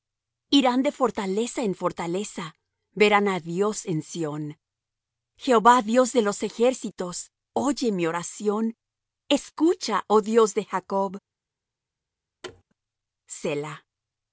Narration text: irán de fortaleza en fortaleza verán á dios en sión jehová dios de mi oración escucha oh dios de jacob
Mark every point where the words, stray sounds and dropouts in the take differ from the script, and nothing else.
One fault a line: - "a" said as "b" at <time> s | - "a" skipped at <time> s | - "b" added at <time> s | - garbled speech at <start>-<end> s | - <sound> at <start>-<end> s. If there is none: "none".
- "los ejércitos oye" added at 6.3 s
- thud at 12.4-12.6 s